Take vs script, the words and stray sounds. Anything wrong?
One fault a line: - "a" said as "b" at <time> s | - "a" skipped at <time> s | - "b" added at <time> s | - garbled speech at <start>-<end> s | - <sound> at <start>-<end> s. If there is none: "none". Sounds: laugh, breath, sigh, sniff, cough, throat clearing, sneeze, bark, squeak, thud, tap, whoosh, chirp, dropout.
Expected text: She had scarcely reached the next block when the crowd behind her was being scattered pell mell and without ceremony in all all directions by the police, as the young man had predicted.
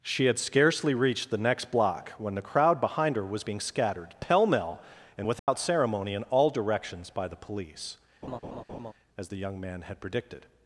- dropout at 5.4-5.5 s
- "all" skipped at 6.5 s
- laugh at 8.2-8.9 s